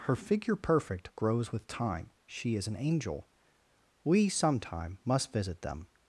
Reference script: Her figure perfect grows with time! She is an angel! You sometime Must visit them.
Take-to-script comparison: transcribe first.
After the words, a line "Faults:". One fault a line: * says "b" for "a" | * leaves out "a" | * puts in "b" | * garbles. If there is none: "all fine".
Her figure perfect grows with time! She is an angel! We sometime Must visit them.
Faults:
* says "We" for "You"